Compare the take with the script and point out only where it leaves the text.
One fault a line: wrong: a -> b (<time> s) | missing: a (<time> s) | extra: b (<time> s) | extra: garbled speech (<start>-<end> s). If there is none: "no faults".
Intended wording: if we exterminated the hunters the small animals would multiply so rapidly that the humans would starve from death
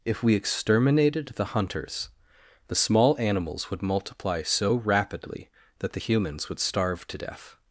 wrong: from -> to (7.1 s)